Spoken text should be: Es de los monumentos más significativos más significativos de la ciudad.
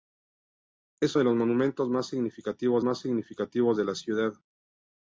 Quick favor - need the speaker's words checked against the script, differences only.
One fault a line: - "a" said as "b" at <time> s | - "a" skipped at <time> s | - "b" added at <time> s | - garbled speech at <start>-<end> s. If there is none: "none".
none